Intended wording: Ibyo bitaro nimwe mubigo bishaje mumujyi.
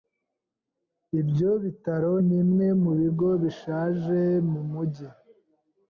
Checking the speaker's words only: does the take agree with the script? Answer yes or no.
yes